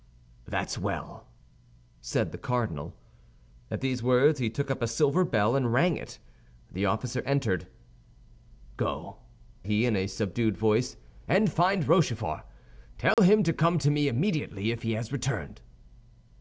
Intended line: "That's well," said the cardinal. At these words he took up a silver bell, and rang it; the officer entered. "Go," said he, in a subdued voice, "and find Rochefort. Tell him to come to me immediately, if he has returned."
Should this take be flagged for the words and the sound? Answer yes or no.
yes